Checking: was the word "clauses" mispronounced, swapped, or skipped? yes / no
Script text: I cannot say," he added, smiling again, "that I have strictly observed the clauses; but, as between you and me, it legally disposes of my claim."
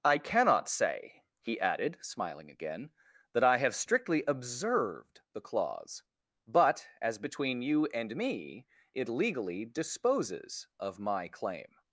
yes